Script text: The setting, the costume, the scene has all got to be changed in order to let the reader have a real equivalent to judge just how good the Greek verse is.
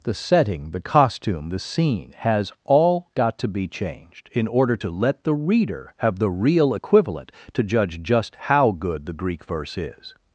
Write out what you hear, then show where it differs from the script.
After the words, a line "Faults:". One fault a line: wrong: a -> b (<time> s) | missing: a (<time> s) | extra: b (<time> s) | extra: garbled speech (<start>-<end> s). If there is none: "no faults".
The setting, the costume, the scene has all got to be changed in order to let the reader have the real equivalent to judge just how good the Greek verse is.
Faults:
wrong: a -> the (6.2 s)